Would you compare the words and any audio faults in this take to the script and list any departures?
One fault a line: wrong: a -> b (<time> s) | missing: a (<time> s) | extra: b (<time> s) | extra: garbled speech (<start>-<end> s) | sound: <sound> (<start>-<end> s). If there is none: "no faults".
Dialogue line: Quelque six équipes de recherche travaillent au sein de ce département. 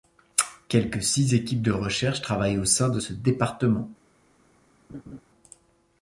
sound: laugh (4.9-5.2 s)